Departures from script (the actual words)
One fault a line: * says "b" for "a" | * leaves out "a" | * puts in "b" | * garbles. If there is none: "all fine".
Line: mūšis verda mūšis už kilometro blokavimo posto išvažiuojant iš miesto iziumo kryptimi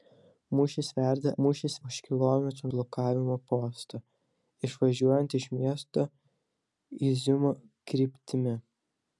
all fine